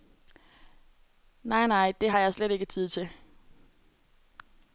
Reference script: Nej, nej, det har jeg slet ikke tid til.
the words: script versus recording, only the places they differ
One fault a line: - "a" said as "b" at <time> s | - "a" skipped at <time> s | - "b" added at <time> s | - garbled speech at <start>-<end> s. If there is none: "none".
none